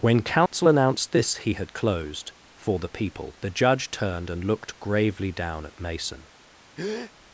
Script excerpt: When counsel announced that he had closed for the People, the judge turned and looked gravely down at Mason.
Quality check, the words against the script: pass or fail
fail